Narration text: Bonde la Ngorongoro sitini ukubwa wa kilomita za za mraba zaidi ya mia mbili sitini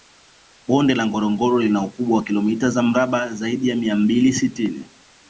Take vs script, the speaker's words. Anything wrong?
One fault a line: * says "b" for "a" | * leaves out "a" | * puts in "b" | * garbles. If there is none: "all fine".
* says "lina" for "sitini"
* leaves out "za"